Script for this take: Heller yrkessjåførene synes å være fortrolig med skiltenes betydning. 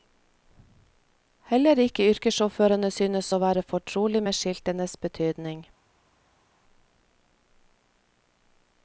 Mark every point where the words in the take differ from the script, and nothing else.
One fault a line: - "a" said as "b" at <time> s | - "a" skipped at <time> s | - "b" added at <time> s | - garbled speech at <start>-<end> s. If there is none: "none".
- "ikke" added at 1.8 s